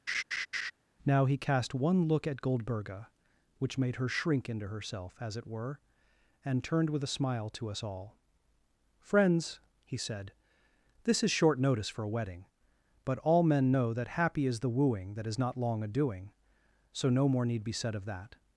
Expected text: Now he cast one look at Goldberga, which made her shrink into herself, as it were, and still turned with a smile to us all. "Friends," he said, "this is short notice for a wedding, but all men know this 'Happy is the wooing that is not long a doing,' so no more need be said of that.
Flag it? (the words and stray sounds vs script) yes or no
yes